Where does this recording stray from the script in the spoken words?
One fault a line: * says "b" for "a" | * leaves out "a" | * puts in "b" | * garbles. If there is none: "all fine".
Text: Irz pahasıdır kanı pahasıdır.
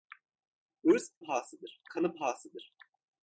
all fine